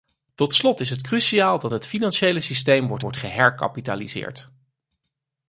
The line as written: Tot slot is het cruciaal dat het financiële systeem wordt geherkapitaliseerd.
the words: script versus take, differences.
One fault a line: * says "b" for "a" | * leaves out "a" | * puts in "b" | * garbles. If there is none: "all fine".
* puts in "wordt"